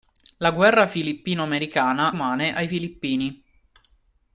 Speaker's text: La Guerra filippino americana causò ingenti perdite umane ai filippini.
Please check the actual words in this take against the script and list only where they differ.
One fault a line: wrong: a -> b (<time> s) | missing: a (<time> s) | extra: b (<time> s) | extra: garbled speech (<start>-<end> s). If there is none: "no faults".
missing: causò ingenti perdite (2.1 s)